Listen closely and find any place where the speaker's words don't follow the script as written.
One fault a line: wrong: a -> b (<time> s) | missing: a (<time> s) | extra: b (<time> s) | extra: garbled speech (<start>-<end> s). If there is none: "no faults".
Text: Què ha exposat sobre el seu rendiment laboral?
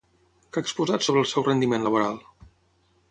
no faults